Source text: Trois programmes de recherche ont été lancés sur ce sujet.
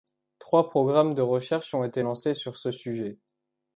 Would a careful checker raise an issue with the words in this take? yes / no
no